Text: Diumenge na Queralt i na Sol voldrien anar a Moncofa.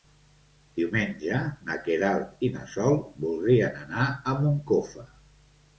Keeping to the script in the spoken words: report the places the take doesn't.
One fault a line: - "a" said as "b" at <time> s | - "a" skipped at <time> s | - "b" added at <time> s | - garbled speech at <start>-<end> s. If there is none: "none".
none